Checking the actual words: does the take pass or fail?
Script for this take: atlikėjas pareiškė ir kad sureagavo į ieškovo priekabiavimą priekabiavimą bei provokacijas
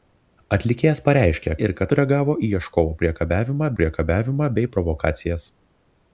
pass